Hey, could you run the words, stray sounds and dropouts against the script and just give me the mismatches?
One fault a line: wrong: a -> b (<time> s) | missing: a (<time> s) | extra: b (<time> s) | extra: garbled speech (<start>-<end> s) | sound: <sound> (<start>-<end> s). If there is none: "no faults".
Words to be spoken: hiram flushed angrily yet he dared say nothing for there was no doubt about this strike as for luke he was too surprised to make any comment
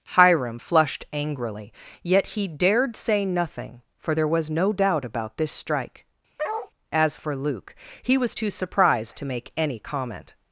sound: bark (6.4-6.7 s)